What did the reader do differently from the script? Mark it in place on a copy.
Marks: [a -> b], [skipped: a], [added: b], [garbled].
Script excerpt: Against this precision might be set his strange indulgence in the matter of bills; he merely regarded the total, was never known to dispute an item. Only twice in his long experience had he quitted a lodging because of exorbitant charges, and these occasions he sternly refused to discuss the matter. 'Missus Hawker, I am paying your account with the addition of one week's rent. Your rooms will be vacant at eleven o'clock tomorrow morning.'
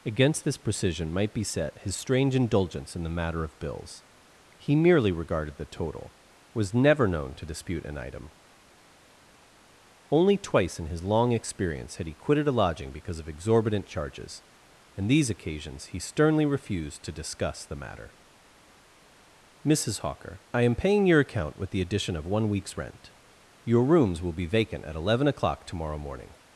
Against this precision might be set his strange indulgence in the matter of bills; he merely regarded the total, was never known to dispute an item. Only twice in his long experience had he quitted a lodging because of exorbitant charges, and these occasions he sternly refused to discuss the matter. 'Missus Hawker, I am paying your account with the addition of one week's rent. Your rooms will be vacant at eleven o'clock tomorrow morning.'